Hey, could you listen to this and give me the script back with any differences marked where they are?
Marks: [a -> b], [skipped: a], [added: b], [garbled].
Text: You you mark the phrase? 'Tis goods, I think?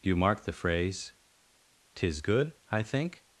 You [skipped: you] mark the phrase? 'Tis [goods, -> good] I think?